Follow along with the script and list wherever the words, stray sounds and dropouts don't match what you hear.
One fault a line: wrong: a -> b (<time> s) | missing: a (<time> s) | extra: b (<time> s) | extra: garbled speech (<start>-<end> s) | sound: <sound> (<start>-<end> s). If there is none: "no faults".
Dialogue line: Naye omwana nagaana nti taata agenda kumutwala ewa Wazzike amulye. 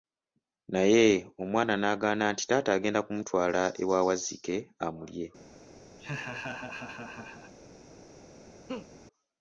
sound: laugh (6.0-7.5 s)
sound: laugh (8.7-8.9 s)